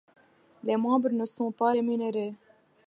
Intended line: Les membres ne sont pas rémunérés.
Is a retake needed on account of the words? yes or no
no